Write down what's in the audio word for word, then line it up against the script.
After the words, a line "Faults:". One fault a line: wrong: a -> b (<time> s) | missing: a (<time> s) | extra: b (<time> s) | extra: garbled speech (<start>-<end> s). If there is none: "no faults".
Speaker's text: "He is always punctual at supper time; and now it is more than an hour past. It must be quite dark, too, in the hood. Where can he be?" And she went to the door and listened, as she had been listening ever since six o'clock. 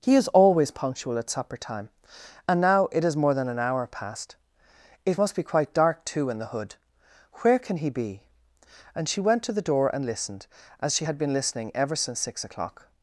"He is always punctual at supper time; and now it is more than an hour past. It must be quite dark, too, in the hood. Where can he be?" And she went to the door and listened, as she had been listening ever since six o'clock.
Faults:
no faults